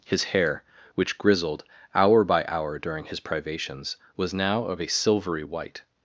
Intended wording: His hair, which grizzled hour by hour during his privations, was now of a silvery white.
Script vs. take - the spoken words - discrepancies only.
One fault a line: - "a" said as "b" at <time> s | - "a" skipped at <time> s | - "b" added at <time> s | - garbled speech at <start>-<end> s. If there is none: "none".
none